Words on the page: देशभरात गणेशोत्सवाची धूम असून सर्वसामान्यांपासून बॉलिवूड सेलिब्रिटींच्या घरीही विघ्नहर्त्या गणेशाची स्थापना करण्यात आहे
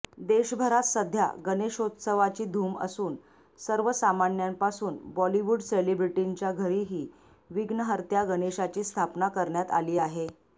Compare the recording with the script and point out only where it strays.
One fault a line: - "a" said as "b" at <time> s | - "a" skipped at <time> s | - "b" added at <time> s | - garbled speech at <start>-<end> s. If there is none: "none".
- "सध्या" added at 0.8 s
- "आली" added at 9.7 s